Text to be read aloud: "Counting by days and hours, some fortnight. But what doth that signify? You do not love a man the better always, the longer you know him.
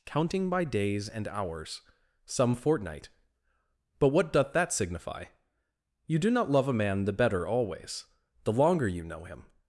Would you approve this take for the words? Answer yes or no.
yes